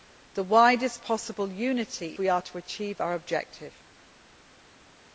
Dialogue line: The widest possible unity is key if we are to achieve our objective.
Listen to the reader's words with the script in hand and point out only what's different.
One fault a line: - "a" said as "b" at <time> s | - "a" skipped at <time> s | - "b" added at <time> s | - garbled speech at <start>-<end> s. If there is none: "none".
- "is key if" skipped at 2.2 s